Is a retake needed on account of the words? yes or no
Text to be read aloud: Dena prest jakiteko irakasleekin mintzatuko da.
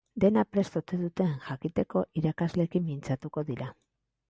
yes